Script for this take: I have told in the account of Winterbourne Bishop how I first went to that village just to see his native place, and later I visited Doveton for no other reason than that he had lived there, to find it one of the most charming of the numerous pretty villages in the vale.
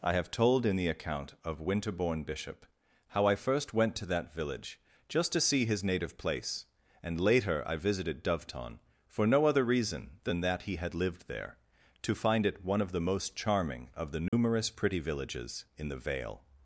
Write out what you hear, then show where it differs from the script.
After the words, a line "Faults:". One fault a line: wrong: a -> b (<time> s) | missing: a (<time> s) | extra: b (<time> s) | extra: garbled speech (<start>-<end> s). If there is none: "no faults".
I have told in the account of Winterbourne Bishop how I first went to that village just to see his native place, and later I visited Doveton for no other reason than that he had lived there, to find it one of the most charming of the numerous pretty villages in the vale.
Faults:
no faults